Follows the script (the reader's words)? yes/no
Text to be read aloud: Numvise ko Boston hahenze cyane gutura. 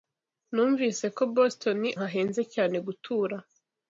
yes